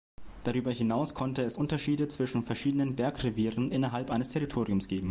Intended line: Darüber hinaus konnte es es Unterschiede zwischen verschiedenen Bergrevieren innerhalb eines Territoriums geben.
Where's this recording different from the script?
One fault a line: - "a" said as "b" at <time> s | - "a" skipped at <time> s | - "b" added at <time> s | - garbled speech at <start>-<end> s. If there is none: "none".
- "es" skipped at 1.6 s